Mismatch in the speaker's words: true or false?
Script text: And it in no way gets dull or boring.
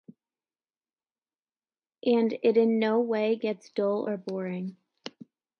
false